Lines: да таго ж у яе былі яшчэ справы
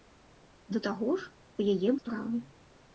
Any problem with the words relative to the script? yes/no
yes